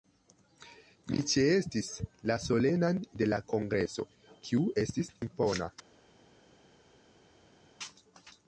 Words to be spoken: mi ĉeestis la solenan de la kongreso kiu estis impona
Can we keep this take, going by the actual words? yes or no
yes